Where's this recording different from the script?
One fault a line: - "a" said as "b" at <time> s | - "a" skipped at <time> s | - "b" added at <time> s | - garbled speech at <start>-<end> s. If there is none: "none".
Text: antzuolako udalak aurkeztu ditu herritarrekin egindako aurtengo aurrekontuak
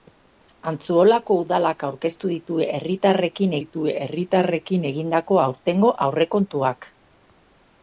- "ditu herritarrekin" added at 3.6 s